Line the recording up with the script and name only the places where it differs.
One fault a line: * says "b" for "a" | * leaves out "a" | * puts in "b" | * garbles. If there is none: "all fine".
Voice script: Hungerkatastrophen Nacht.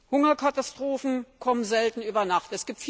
* puts in "kommen selten über"